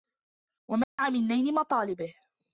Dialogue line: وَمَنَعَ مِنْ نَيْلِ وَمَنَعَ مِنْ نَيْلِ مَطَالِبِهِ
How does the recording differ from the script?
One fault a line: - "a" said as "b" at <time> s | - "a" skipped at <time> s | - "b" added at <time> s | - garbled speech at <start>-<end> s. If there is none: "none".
- "وَمَنَعَ مِنْ نَيْلِ" skipped at 1.5 s